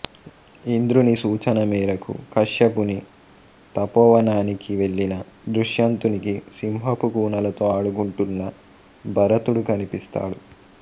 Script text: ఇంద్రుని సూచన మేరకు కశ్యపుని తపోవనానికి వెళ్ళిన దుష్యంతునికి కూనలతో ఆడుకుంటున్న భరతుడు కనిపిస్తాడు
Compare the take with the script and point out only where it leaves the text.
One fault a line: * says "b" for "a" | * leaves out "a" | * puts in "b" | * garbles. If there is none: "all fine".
* puts in "సింహపు"